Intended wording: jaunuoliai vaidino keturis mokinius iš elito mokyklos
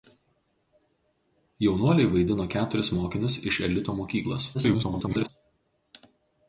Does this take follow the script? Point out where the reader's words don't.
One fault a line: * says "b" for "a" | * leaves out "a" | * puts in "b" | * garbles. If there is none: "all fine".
* garbles